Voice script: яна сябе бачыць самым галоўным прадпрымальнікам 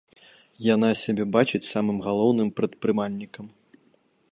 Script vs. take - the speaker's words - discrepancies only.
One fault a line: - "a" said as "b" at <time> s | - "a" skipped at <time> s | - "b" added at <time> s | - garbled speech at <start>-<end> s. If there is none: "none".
none